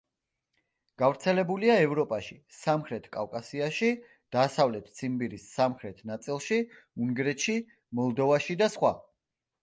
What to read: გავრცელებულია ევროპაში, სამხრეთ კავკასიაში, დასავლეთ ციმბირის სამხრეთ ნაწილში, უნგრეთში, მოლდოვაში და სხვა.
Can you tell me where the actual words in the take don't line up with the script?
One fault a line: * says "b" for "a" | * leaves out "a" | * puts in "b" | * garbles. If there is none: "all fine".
all fine